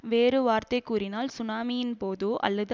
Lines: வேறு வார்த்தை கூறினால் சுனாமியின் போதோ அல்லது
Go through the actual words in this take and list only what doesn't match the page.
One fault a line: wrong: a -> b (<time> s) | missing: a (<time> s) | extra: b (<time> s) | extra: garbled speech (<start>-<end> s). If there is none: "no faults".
no faults